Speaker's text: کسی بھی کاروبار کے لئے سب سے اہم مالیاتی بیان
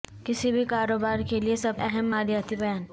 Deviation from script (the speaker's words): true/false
true